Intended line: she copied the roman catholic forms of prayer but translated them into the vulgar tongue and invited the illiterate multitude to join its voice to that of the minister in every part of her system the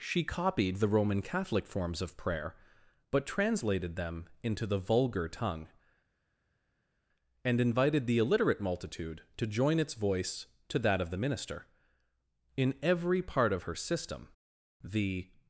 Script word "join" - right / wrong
right